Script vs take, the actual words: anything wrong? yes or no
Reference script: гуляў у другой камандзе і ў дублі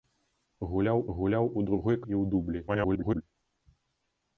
yes